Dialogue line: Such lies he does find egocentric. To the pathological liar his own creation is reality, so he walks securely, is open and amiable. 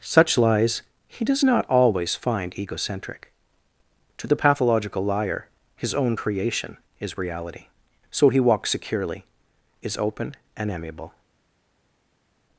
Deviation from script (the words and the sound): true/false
true